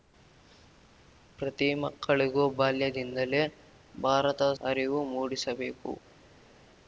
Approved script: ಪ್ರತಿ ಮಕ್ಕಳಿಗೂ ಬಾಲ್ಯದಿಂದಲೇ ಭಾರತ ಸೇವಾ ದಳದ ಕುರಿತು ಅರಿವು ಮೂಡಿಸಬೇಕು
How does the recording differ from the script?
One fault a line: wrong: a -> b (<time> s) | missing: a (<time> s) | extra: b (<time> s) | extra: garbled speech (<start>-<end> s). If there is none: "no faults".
missing: ಸೇವಾ ದಳದ ಕುರಿತು (4.4 s)